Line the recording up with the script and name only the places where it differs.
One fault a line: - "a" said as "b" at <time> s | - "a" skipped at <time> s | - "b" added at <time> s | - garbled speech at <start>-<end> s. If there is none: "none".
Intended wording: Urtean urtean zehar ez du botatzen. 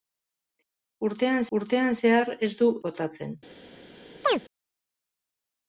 none